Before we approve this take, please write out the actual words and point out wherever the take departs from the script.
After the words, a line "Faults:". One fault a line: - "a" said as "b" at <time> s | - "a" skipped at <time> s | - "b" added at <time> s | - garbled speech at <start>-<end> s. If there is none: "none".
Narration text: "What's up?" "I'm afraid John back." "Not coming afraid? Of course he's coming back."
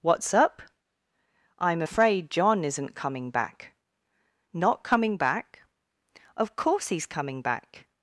"What's up?" "I'm afraid John isn't coming back." "Not coming back? Of course he's coming back."
Faults:
- "isn't coming" added at 2.6 s
- "afraid" said as "back" at 5.2 s